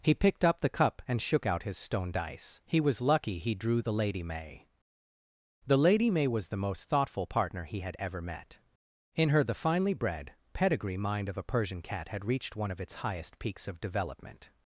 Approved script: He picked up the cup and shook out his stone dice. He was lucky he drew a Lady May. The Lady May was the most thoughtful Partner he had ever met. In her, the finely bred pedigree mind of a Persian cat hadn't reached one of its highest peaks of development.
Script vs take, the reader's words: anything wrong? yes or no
yes